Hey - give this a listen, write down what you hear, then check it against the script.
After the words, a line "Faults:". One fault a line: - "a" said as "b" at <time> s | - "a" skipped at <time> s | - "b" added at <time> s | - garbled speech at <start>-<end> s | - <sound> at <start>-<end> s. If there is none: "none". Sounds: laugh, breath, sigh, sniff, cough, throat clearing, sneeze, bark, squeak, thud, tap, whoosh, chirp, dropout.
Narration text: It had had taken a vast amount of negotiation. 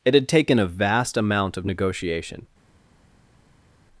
It had taken a vast amount of negotiation.
Faults:
- "had" skipped at 0.3 s